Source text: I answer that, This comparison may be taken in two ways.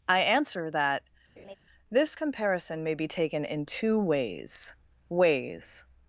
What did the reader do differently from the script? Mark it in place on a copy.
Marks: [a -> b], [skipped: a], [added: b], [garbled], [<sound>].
I answer that, [laugh] This comparison may be taken in two ways. [added: ways]